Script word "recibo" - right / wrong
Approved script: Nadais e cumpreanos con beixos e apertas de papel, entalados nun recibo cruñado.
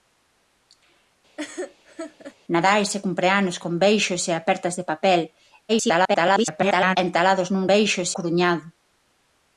wrong